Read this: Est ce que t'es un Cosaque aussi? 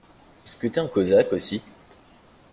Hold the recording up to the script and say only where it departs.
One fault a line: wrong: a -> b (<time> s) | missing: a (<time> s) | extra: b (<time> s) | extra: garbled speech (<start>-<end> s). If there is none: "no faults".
no faults